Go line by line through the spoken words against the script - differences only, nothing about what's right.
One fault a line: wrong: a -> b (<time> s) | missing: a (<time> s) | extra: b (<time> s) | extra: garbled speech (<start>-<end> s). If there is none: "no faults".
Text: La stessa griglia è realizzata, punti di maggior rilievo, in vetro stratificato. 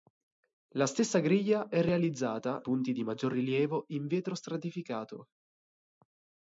no faults